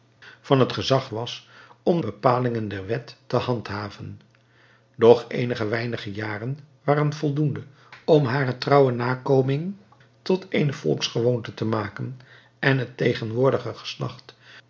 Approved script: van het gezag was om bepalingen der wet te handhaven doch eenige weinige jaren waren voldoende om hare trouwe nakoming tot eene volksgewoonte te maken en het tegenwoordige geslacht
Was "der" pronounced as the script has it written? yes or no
yes